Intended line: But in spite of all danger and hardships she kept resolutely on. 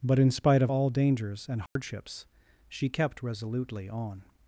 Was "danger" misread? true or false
true